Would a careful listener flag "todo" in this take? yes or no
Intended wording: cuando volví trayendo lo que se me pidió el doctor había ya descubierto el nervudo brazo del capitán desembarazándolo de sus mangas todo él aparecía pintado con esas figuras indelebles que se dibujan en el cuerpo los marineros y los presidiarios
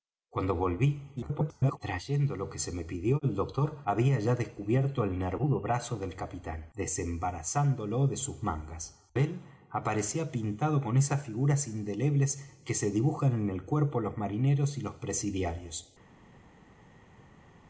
yes